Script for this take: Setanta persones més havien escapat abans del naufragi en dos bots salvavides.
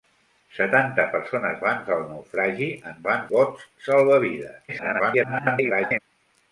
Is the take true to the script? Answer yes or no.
no